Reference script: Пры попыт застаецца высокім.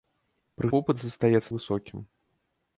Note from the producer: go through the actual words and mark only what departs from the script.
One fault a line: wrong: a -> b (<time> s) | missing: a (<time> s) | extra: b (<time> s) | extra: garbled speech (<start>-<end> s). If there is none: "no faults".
no faults